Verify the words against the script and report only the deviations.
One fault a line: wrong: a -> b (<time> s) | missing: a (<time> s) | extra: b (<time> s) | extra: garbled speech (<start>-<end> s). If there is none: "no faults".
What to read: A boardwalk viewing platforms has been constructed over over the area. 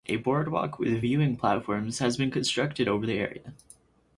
extra: with (0.8 s)
missing: over (3.1 s)